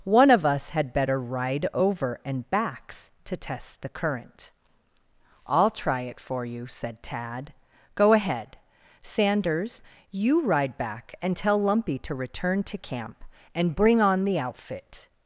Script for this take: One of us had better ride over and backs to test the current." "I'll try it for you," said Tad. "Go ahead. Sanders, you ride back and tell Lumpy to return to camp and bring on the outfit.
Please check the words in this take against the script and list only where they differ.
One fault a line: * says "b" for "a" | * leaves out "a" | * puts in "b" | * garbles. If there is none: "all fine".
all fine